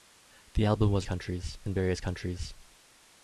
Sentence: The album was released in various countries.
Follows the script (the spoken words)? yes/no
no